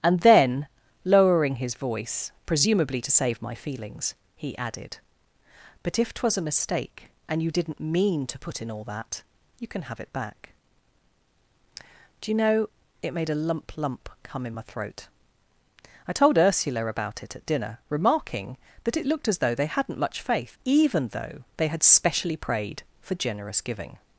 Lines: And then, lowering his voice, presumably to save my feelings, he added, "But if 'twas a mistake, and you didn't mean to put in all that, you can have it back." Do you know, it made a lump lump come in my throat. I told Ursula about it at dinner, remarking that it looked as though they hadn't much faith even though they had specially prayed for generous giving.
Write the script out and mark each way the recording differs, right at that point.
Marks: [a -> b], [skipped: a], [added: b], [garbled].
And then, lowering his voice, presumably to save my feelings, he added, "But if 'twas a mistake, and you didn't mean to put in all that, you can have it back." Do you know, it made a lump lump come in my throat. I told Ursula about it at dinner, remarking that it looked as though they hadn't much faith even though they had specially prayed for generous giving.